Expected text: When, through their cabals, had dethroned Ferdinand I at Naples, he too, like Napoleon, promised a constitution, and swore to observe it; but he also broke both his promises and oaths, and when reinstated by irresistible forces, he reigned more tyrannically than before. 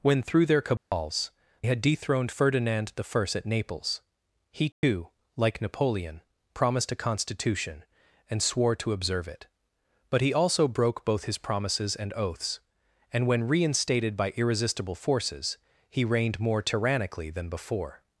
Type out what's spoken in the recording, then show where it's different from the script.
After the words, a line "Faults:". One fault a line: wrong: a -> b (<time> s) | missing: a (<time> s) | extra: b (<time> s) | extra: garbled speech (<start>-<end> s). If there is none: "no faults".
When, through their cabals, had dethroned Ferdinand I at Naples, he too, like Napoleon, promised a constitution, and swore to observe it; but he also broke both his promises and oaths, and when reinstated by irresistible forces, he reigned more tyrannically than before.
Faults:
no faults